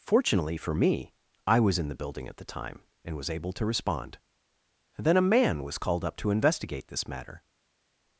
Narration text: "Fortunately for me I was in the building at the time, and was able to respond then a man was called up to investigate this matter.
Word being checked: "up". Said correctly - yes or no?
yes